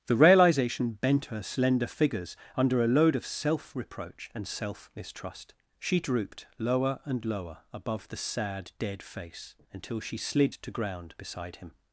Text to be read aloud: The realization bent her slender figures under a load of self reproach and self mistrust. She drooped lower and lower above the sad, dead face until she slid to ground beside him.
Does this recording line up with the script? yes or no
yes